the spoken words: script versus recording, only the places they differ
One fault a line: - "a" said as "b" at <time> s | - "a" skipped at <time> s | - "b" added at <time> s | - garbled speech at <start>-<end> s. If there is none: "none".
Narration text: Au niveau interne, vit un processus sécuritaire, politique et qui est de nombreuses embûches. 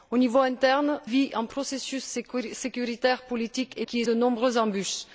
none